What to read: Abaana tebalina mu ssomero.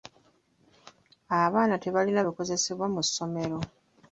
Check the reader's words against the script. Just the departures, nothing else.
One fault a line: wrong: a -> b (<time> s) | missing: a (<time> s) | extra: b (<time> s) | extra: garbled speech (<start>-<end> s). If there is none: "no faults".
extra: bikozesebwa (2.2 s)